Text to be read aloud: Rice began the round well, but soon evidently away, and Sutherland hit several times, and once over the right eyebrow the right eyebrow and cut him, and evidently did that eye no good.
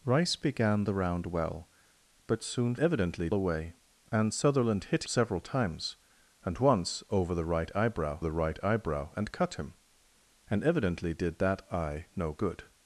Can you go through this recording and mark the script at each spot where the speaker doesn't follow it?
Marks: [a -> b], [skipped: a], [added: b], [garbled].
Rice began the round well, but soon evidently away, and Sutherland hit several times, and once over the right eyebrow the right eyebrow and cut him, and evidently did that eye no good.